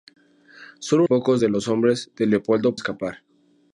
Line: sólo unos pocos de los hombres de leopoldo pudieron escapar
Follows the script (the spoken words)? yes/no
no